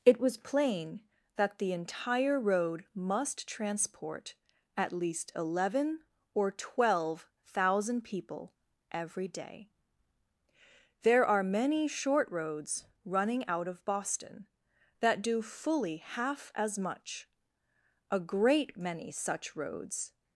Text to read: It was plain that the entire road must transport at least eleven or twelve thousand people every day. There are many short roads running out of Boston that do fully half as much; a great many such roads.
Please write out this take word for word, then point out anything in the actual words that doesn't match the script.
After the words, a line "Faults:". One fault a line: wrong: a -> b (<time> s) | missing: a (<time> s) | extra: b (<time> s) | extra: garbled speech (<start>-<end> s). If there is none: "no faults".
It was plain that the entire road must transport at least eleven or twelve thousand people every day. There are many short roads running out of Boston that do fully half as much; a great many such roads.
Faults:
no faults